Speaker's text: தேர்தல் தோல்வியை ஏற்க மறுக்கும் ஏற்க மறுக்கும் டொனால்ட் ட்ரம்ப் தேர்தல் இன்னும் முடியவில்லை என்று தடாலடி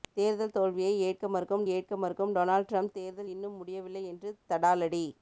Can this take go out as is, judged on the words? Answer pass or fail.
pass